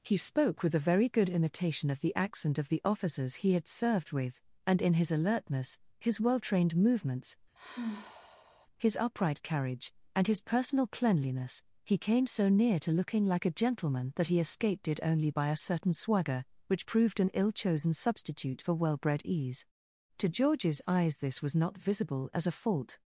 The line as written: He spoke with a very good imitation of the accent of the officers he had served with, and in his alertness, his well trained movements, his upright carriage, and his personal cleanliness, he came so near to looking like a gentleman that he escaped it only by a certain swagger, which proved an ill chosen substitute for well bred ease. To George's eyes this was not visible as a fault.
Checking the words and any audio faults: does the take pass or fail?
fail